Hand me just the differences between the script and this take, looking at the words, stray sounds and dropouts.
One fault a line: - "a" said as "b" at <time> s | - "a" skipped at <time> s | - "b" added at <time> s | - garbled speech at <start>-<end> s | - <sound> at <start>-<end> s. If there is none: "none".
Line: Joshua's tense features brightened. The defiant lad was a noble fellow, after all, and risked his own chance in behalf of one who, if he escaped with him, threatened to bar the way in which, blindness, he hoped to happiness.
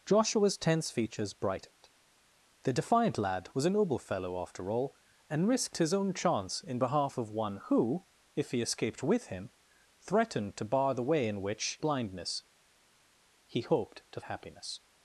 none